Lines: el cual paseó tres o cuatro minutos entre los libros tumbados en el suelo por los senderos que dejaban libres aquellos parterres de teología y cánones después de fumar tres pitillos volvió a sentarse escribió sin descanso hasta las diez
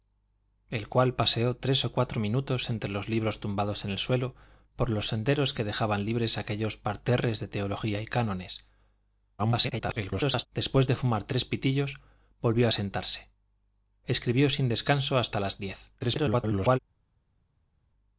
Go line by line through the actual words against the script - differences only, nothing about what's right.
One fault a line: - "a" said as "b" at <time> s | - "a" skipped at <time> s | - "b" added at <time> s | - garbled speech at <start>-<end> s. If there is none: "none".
- garbled speech at 9.4-10.5 s
- garbled speech at 16.0-16.8 s